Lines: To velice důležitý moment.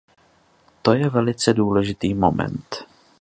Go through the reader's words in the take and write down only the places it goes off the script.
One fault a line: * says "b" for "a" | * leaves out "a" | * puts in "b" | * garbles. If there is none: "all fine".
* puts in "je"